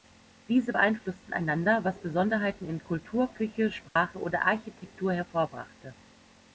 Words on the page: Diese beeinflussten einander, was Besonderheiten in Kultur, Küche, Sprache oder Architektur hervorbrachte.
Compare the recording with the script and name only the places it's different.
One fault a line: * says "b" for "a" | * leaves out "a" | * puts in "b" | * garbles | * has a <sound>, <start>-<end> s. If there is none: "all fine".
* has a dropout, 3.9-4.0 s